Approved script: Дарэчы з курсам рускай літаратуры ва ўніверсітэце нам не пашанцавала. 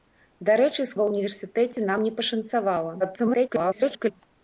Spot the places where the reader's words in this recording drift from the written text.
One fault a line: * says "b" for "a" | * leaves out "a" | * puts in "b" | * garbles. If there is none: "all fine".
* leaves out "курсам рускай літаратуры"
* garbles